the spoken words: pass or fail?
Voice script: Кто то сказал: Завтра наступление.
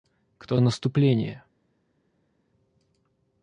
fail